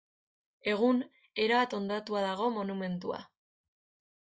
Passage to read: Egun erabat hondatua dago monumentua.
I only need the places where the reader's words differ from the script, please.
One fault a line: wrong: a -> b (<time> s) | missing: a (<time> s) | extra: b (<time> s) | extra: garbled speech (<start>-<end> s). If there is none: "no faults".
no faults